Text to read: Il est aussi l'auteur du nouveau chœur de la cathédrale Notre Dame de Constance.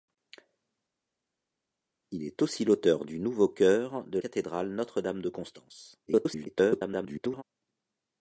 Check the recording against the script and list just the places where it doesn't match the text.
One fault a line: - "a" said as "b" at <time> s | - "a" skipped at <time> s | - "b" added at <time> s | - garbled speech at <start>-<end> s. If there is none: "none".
- "la" skipped at 4.2 s
- garbled speech at 6.1-7.4 s